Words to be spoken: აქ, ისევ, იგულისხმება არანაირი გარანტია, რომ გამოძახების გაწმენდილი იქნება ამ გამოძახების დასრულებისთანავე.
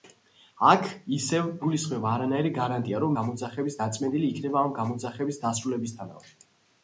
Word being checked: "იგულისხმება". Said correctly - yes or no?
yes